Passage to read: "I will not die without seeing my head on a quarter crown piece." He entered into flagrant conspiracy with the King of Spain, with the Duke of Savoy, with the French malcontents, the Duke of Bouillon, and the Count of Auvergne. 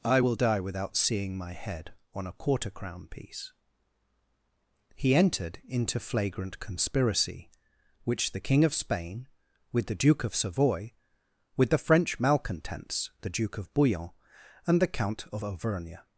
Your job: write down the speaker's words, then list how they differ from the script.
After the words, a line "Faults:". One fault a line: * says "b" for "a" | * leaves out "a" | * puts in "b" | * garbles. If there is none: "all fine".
"I will die without seeing my head on a quarter crown piece." He entered into flagrant conspiracy which the King of Spain, with the Duke of Savoy, with the French malcontents, the Duke of Bouillon, and the Count of Auvergne.
Faults:
* leaves out "not"
* says "which" for "with"